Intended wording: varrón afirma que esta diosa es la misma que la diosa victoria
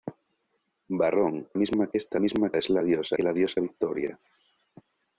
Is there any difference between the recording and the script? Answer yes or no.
yes